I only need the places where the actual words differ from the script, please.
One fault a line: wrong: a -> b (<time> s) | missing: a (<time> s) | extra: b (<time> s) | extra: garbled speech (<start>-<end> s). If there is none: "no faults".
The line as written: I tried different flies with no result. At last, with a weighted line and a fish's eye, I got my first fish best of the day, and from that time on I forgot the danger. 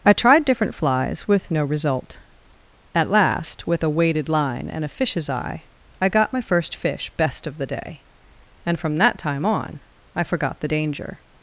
no faults